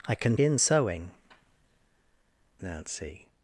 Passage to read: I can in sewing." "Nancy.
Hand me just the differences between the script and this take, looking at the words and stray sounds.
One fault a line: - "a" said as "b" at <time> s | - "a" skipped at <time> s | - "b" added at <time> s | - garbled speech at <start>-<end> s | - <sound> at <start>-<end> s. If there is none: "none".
none